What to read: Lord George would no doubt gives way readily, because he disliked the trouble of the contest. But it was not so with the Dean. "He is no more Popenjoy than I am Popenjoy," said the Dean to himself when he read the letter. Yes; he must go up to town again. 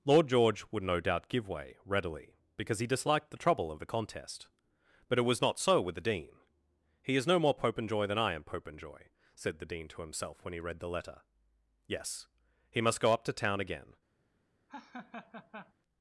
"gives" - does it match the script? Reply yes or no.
no